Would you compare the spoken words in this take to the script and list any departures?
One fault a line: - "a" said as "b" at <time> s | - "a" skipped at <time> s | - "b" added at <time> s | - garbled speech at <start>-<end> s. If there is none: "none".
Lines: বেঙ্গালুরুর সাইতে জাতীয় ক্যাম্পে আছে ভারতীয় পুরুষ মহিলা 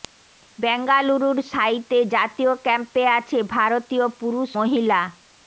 none